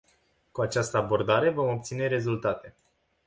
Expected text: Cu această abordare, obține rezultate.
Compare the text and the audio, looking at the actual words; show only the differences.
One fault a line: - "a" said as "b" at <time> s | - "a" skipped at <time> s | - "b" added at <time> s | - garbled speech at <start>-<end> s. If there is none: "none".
- "vom" added at 1.5 s